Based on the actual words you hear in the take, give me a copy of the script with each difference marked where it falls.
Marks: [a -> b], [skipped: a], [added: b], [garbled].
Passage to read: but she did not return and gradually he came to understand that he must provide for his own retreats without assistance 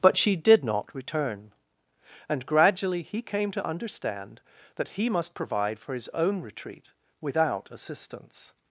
but she did not return and gradually he came to understand that he must provide for his own [retreats -> retreat] without assistance